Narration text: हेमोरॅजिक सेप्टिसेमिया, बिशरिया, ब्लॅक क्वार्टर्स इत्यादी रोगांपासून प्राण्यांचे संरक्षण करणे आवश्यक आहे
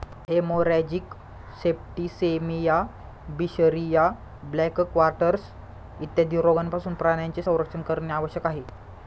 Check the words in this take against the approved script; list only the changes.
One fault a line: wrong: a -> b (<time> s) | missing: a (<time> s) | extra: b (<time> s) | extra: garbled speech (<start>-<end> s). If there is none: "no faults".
no faults